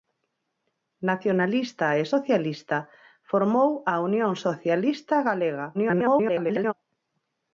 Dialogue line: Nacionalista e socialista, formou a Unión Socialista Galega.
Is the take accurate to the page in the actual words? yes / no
no